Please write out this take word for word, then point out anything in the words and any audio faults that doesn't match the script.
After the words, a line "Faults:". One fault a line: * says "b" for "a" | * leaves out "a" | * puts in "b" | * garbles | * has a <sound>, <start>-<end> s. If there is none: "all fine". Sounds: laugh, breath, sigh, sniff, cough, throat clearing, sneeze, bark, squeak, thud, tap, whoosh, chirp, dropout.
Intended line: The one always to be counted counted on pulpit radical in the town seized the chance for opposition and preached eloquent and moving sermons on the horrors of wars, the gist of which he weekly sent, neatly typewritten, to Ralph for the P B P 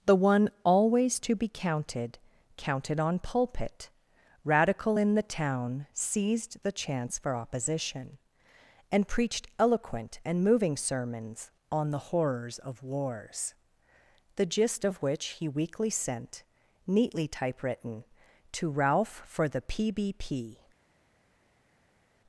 The one always to be counted counted on pulpit radical in the town seized the chance for opposition and preached eloquent and moving sermons on the horrors of wars, the gist of which he weekly sent, neatly typewritten, to Ralph for the P B P
Faults:
all fine